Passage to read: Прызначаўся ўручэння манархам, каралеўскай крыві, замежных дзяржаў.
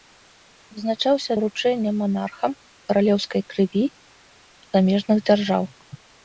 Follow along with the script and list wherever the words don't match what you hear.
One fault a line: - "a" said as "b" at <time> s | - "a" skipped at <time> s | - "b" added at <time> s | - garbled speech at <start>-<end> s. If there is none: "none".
none